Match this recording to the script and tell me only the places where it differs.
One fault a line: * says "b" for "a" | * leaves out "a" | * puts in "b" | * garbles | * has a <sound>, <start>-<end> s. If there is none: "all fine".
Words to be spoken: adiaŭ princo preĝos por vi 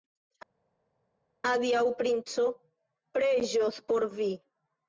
all fine